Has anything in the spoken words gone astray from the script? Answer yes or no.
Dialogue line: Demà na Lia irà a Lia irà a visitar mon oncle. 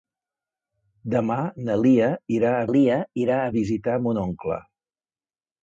no